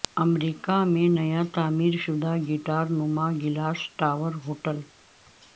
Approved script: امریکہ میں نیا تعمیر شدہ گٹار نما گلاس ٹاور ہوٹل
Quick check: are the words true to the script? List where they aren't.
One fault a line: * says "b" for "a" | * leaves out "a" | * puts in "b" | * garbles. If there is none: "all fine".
all fine